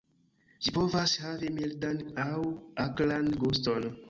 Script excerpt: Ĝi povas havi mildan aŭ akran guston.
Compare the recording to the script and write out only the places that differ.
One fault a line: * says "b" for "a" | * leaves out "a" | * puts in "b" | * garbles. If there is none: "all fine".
all fine